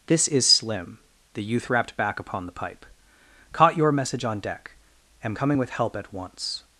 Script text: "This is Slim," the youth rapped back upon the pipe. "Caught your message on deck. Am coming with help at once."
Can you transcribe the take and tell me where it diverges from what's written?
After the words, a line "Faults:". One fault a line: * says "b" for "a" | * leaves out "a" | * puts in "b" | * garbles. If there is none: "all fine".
"This is Slim," the youth rapped back upon the pipe. "Caught your message on deck. Am coming with help at once."
Faults:
all fine